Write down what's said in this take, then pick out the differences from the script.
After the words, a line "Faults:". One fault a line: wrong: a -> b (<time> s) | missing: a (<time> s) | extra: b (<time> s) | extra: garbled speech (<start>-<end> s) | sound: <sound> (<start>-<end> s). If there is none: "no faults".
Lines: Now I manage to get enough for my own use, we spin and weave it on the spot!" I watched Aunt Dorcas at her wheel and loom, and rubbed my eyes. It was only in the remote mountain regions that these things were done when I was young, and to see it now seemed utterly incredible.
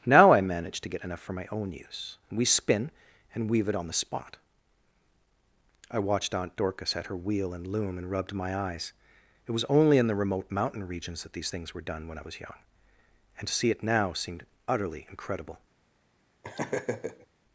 Now I manage to get enough for my own use, we spin and weave it on the spot!" I watched Aunt Dorcas at her wheel and loom, and rubbed my eyes. It was only in the remote mountain regions that these things were done when I was young, and to see it now seemed utterly incredible.
Faults:
sound: laugh (16.4-17.3 s)